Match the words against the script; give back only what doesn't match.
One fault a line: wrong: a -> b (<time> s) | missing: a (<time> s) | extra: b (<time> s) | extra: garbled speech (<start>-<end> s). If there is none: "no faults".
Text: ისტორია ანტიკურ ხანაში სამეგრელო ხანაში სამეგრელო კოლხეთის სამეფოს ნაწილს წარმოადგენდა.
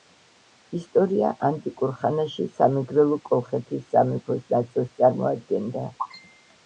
missing: ხანაში სამეგრელო (3.2 s)